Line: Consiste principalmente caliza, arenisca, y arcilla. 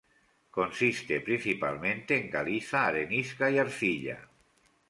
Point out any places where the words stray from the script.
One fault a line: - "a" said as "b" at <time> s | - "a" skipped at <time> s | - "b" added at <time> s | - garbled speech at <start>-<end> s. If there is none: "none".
- "en" added at 2.2 s